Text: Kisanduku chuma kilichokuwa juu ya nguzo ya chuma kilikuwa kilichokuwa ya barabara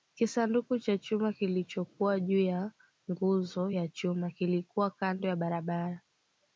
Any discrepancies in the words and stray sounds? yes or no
yes